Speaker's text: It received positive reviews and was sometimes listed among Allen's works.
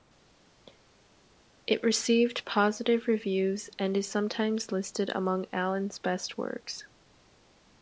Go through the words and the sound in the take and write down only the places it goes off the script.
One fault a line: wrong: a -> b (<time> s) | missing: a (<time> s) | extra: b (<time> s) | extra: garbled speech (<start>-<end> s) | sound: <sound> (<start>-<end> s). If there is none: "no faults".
wrong: was -> is (4.0 s)
extra: best (6.0 s)